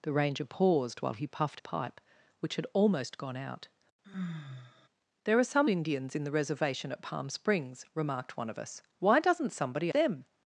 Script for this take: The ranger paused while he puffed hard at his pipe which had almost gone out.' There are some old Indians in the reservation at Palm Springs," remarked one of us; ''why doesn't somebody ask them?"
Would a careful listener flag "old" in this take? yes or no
yes